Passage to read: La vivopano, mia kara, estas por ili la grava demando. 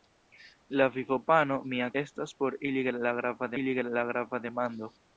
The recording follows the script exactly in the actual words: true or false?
false